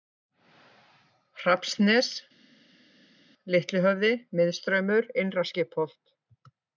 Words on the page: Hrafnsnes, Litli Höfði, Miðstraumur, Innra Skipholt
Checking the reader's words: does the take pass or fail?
pass